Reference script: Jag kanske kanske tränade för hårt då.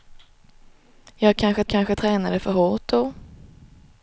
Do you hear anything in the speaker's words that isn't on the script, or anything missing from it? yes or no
no